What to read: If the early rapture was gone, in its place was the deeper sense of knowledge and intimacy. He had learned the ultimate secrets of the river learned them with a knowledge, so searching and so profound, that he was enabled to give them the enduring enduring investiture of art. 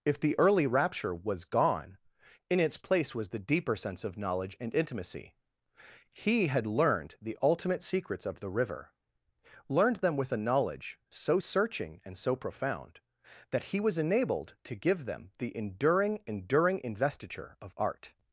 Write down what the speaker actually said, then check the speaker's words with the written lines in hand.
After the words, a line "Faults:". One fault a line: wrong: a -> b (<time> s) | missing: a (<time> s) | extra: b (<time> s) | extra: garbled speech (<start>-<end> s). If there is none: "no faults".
If the early rapture was gone, in its place was the deeper sense of knowledge and intimacy. He had learned the ultimate secrets of the river learned them with a knowledge, so searching and so profound, that he was enabled to give them the enduring enduring investiture of art.
Faults:
no faults